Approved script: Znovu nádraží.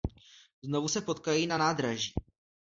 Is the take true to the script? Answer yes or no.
no